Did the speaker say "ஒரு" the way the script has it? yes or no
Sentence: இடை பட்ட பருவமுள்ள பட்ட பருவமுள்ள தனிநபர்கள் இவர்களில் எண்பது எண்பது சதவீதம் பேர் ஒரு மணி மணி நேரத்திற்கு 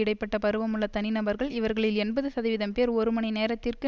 yes